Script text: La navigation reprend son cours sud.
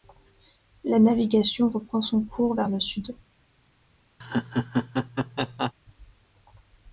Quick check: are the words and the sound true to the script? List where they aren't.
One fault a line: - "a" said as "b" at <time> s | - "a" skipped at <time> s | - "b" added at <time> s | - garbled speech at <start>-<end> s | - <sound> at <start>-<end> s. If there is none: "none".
- "vers le" added at 2.5 s
- laugh at 4.2-5.7 s